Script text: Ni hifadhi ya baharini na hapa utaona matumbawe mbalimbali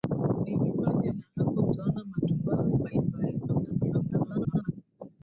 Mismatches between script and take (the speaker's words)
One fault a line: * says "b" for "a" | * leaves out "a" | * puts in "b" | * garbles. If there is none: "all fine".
* leaves out "baharini"
* garbles